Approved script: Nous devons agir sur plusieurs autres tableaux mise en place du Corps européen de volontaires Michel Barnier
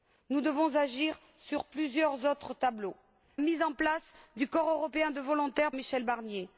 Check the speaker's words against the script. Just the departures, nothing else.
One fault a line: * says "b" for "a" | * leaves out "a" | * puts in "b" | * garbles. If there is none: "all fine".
all fine